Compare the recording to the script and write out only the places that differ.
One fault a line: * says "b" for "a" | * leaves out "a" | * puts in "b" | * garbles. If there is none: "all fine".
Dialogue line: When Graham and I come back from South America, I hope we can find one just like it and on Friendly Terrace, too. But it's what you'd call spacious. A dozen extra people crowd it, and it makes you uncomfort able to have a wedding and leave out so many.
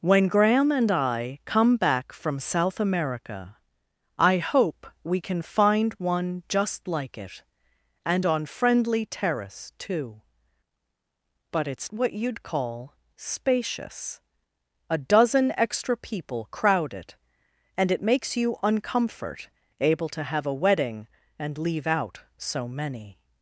all fine